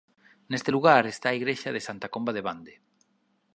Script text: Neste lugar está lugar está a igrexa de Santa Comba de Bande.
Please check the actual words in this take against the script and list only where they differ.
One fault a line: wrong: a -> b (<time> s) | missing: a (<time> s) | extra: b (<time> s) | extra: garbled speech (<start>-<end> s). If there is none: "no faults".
missing: lugar está (1.3 s)